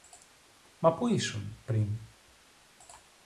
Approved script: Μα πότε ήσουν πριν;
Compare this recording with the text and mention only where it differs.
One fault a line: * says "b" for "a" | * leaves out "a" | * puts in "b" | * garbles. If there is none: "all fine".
* says "πού" for "πότε"